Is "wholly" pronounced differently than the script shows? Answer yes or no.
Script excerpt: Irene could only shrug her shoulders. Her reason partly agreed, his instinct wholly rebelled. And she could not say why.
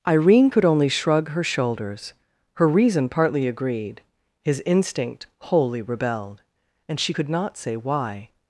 no